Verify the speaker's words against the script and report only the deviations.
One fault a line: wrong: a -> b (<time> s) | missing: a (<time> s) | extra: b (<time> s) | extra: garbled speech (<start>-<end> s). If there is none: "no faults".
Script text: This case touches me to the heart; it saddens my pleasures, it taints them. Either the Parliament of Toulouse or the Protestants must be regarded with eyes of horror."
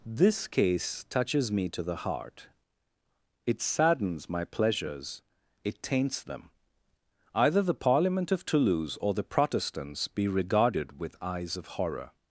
missing: must (10.1 s)